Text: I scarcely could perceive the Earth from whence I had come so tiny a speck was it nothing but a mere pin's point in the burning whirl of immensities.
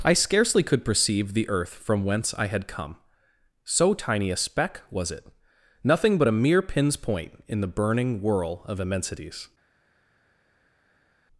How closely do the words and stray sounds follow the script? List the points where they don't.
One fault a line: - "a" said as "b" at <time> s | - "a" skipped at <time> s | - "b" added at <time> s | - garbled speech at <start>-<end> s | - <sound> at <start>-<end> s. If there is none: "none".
none